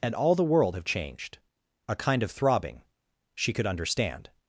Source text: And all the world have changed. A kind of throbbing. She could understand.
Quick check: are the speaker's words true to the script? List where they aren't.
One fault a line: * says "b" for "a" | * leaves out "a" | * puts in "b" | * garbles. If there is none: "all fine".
all fine